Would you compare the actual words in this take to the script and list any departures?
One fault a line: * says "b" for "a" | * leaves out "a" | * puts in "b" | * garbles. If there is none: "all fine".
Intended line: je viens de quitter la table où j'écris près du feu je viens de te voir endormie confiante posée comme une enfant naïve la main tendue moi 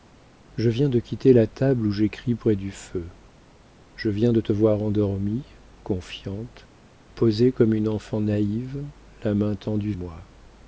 all fine